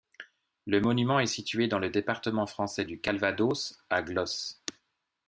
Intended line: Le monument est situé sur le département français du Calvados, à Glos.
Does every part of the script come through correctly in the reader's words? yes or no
no